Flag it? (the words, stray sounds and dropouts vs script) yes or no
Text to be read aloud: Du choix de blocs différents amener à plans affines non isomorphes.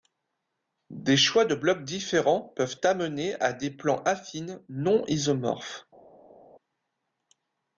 yes